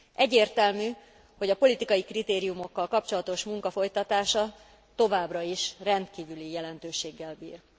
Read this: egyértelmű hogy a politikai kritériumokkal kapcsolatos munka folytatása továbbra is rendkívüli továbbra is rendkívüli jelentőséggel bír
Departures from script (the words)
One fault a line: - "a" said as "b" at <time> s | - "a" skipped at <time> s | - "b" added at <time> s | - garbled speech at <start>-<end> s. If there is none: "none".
- "továbbra is rendkívüli" skipped at 6.5 s